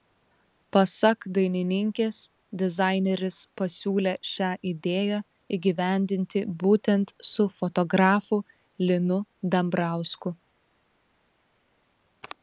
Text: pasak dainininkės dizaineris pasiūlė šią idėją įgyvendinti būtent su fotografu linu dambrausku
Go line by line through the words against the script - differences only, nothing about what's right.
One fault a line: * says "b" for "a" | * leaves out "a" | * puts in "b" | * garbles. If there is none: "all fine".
all fine